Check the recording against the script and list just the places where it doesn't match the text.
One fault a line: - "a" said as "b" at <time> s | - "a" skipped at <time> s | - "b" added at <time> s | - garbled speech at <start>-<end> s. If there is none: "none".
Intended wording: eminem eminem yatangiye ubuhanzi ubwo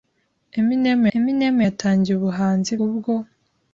none